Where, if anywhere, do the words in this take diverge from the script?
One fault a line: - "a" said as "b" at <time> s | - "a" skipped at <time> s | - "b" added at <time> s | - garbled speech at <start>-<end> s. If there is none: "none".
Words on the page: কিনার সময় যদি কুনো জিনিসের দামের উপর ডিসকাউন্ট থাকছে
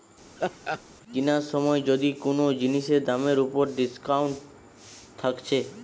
none